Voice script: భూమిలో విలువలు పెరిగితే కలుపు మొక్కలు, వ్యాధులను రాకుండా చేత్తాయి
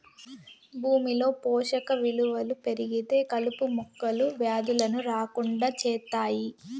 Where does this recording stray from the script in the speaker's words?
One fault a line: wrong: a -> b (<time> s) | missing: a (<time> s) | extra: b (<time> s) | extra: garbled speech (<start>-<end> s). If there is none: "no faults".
extra: పోషక (1.4 s)